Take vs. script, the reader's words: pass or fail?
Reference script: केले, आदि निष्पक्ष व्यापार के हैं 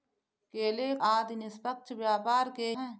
pass